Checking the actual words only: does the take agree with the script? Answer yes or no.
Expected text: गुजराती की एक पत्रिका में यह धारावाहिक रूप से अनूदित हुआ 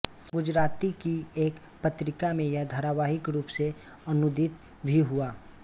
no